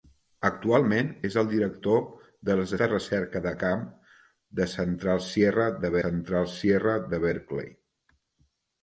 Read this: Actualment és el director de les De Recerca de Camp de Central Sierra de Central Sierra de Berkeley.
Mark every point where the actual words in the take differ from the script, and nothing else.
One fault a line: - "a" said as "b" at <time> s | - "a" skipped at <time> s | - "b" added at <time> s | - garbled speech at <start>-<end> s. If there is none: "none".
none